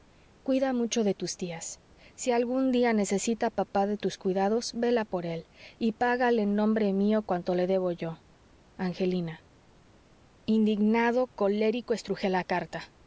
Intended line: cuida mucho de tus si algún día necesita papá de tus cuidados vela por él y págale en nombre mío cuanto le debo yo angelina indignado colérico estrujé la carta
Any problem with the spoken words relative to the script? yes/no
yes